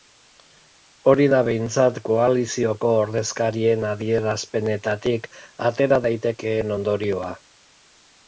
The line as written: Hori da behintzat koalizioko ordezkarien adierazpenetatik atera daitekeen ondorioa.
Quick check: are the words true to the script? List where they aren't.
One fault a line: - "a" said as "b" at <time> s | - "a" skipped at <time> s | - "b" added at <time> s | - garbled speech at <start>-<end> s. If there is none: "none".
none